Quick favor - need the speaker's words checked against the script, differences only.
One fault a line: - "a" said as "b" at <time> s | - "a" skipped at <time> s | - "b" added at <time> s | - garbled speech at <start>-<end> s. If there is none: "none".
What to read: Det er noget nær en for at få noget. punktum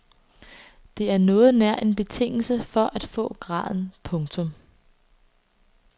- "betingelse" added at 1.9 s
- "noget" said as "graden" at 3.4 s